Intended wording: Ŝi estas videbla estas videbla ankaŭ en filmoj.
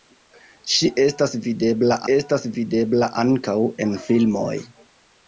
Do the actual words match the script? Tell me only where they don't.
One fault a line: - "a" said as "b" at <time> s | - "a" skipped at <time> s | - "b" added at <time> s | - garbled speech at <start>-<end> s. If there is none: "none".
none